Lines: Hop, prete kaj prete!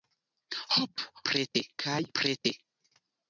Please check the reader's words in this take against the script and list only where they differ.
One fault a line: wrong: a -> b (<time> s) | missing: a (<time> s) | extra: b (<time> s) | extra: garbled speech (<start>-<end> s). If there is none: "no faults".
no faults